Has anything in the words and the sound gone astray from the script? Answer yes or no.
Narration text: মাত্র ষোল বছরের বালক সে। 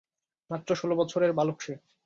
no